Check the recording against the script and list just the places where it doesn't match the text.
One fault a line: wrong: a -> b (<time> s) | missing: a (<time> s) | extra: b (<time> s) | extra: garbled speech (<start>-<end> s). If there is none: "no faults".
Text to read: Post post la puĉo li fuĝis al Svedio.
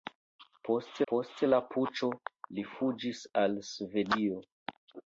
no faults